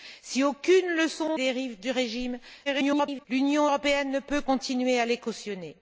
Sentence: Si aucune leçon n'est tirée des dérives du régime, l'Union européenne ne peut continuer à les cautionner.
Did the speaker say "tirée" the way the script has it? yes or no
no